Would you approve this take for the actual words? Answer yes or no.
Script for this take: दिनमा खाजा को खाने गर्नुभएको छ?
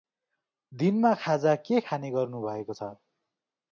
no